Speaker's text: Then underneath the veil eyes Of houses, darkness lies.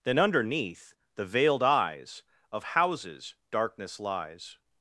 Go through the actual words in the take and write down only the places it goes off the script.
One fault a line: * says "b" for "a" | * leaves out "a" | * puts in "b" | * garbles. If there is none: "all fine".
* says "veiled" for "veil"